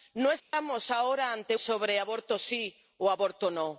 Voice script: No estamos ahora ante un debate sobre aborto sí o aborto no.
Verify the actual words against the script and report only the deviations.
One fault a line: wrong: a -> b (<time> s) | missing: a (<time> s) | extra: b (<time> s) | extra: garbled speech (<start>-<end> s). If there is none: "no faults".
missing: un debate (1.6 s)